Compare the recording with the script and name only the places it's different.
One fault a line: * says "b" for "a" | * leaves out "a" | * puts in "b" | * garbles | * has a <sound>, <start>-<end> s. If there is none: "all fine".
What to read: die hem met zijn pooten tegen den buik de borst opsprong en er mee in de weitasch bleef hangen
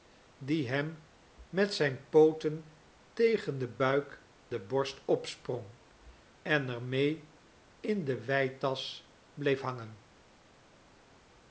all fine